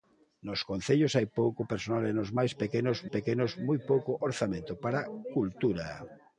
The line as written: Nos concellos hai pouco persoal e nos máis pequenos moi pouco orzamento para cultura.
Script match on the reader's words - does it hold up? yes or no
no